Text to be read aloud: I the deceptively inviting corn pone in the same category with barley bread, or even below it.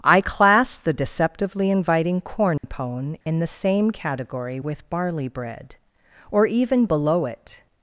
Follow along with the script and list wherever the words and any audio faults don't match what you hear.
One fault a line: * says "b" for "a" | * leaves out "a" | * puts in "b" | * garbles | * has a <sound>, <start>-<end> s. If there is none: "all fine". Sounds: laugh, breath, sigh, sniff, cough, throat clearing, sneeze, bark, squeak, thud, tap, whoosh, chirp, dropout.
* puts in "class"
* has a dropout, 2.6-2.6 s
* has a dropout, 3.2-3.3 s